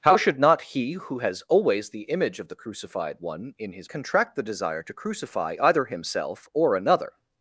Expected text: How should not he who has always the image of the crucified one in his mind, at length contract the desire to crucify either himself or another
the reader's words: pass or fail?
fail